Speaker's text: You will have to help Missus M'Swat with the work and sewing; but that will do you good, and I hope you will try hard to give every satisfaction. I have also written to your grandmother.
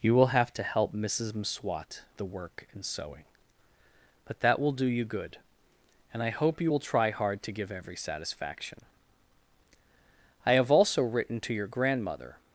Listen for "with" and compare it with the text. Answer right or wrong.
wrong